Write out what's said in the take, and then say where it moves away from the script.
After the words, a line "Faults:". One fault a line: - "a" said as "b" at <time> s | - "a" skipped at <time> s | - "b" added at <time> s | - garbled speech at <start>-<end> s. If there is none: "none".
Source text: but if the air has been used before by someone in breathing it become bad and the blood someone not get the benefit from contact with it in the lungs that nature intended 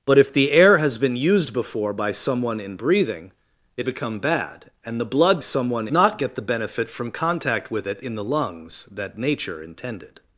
but if the air has been used before by someone in breathing it become bad and the blood someone not get the benefit from contact with it in the lungs that nature intended
Faults:
none